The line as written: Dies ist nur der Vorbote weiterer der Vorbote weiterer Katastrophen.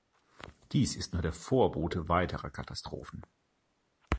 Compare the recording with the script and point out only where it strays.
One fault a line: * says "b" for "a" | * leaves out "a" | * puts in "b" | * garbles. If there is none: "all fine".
* leaves out "der Vorbote weiterer"